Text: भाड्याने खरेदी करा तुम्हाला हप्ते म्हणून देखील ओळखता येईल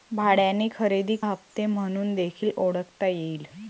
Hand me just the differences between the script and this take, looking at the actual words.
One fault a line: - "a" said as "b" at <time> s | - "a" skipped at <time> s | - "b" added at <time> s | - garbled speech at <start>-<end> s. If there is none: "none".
- "करा तुम्हाला" skipped at 1.1 s